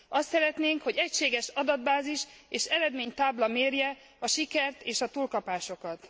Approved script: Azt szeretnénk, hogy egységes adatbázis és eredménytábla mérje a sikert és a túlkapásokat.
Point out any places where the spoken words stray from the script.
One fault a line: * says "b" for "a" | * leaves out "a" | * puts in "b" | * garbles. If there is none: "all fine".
all fine